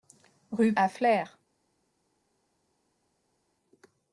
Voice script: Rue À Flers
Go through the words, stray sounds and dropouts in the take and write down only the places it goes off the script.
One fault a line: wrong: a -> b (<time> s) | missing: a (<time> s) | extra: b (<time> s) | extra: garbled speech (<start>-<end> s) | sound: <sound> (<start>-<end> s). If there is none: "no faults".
no faults